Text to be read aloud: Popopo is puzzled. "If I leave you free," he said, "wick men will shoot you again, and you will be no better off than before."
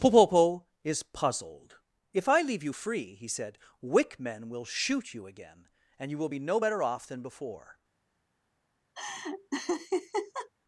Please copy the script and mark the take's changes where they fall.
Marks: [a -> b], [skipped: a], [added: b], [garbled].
Popopo is puzzled. "If I leave you free," he said, "wick men will shoot you again, and you will be no better off than before."